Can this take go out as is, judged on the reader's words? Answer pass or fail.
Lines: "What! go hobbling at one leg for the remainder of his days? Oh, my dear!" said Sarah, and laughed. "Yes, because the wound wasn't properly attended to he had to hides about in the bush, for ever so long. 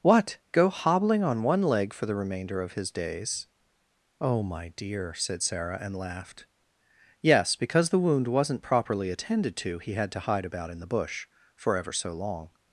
fail